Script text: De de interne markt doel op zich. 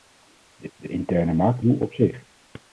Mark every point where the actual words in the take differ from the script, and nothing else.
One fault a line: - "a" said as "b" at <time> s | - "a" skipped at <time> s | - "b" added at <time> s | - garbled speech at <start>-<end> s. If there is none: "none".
none